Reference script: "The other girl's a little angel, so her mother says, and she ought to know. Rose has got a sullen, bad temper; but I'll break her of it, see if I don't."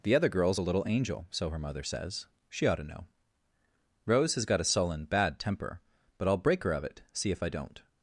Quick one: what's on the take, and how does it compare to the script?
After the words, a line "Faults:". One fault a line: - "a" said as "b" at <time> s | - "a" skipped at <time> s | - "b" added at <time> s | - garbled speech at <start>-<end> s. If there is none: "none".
"The other girl's a little angel, so her mother says, she ought to know. Rose has got a sullen, bad temper; but I'll break her of it, see if I don't."
Faults:
- "and" skipped at 2.3 s